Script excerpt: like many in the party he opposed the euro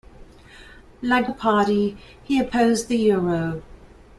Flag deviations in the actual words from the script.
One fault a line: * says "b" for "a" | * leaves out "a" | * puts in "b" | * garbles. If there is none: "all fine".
* leaves out "many in"